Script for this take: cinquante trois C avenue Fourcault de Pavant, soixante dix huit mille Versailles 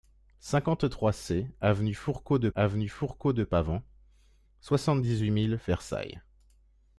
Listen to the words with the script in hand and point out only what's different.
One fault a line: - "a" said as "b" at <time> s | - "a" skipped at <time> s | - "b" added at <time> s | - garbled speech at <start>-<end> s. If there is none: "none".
- "avenue Fourcault de" added at 2.6 s